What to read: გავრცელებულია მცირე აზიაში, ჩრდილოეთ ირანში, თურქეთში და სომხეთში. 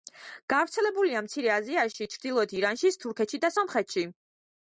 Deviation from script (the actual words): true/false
false